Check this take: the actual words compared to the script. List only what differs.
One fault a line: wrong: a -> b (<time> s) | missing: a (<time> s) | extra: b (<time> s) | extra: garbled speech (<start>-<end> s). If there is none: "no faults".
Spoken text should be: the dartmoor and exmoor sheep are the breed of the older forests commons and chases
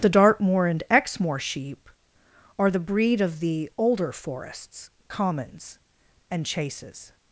no faults